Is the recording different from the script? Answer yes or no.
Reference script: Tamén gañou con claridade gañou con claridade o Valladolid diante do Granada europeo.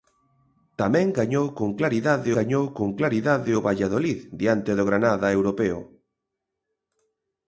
no